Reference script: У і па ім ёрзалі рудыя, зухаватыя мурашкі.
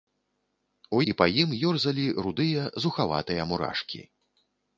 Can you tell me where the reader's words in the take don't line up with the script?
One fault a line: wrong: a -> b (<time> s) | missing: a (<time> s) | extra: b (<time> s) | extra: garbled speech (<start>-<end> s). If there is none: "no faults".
no faults